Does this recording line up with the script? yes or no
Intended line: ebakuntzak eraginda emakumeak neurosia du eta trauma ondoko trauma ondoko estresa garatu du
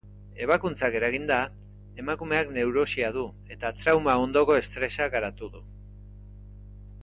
no